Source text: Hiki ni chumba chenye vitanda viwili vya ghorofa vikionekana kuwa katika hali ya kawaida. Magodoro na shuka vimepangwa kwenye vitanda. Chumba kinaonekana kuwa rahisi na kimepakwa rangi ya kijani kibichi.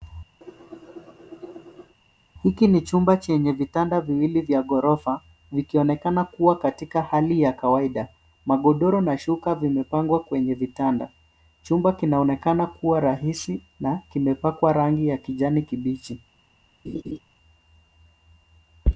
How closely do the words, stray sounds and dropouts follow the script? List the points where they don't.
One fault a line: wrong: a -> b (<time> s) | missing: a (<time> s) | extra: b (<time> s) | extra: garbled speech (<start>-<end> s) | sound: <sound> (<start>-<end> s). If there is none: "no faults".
sound: cough (0.4-2.0 s)
sound: laugh (16.8-17.2 s)